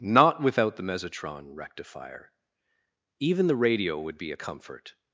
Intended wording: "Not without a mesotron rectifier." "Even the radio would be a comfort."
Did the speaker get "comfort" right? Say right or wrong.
right